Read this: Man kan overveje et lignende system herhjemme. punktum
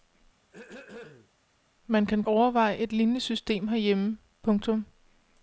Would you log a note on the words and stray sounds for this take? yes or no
yes